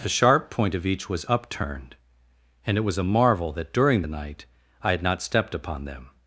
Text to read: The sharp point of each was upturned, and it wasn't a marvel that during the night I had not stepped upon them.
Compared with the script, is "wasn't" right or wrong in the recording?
wrong